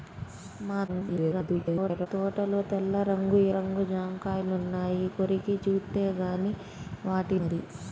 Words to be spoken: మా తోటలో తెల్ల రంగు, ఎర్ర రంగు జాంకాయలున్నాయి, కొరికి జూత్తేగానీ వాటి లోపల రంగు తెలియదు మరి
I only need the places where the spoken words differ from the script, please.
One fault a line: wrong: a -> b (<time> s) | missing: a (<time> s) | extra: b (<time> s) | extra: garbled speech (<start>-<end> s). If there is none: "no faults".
extra: garbled speech (0.9-2.1 s)
missing: ఎర్ర (3.4 s)
missing: లోపల రంగు తెలియదు (7.4 s)